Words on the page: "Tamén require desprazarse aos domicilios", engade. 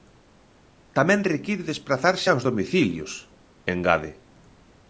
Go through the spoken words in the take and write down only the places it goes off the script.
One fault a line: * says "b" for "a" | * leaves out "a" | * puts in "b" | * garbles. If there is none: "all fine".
all fine